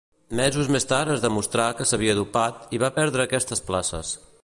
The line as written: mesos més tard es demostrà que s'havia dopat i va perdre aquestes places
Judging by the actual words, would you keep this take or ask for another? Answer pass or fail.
pass